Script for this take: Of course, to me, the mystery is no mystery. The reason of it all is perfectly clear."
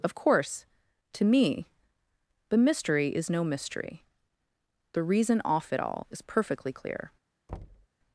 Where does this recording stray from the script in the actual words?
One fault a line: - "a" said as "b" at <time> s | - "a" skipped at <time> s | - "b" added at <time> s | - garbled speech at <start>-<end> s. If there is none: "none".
- "of" said as "off" at 5.5 s